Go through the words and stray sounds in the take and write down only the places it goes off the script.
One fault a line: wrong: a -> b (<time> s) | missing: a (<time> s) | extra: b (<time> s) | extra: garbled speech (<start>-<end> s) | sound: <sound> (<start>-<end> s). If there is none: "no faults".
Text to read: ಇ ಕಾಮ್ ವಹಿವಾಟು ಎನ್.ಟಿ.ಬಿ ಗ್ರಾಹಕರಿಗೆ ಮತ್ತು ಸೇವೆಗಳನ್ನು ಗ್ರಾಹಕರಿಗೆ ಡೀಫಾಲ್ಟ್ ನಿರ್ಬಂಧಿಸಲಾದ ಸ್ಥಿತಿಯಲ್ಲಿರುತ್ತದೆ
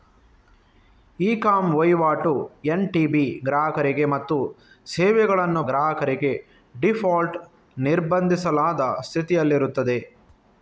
no faults